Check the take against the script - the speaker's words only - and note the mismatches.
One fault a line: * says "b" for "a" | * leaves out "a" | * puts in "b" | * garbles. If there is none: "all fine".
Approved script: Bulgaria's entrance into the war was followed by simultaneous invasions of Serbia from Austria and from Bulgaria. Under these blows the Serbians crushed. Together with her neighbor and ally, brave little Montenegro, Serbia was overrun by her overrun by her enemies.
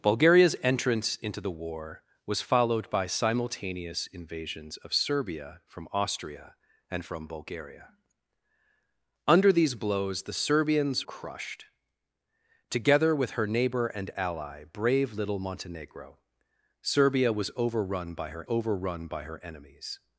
all fine